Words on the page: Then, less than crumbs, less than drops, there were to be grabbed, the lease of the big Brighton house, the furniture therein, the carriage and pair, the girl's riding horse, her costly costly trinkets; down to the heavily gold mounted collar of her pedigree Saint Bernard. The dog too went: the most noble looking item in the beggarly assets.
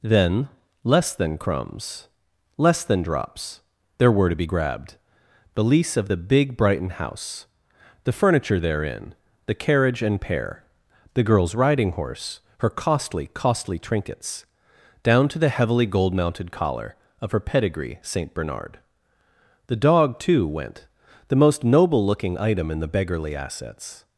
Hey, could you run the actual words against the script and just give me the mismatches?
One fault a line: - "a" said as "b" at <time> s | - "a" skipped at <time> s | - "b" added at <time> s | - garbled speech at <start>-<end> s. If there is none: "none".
none